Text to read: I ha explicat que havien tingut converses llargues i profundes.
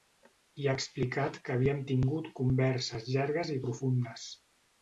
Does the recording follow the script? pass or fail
pass